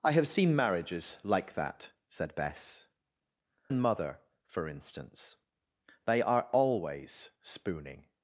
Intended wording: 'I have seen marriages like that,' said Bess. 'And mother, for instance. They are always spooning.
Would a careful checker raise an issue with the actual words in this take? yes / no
no